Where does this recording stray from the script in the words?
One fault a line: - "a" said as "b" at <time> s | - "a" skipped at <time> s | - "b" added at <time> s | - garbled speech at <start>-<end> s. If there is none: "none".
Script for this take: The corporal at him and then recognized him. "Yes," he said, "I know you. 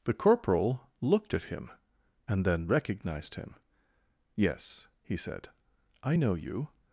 - "looked" added at 1.0 s